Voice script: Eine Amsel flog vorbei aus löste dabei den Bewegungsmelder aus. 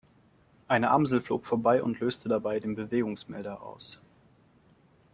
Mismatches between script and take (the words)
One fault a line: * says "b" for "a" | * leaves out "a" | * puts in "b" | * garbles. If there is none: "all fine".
* says "und" for "aus"